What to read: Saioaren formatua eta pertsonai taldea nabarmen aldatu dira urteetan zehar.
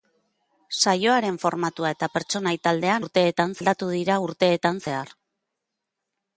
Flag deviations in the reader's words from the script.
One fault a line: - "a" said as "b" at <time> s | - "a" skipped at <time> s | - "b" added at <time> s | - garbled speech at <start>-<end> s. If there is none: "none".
- "nabarmen" said as "urteetan" at 3.0 s